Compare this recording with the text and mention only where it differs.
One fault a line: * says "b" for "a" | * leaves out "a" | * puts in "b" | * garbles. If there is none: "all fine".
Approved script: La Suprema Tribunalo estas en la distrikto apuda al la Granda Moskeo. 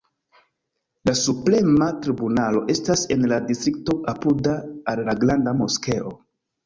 all fine